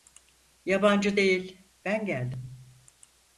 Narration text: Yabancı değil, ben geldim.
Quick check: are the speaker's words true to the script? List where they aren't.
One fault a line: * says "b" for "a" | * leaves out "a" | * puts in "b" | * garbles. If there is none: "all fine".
all fine